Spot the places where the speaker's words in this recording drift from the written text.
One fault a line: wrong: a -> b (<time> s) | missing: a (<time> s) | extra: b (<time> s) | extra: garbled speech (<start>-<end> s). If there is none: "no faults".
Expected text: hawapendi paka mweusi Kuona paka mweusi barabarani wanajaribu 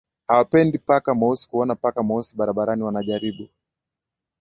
no faults